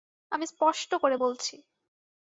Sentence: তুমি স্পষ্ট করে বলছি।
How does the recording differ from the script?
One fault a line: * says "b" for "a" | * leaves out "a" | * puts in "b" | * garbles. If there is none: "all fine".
* says "আমি" for "তুমি"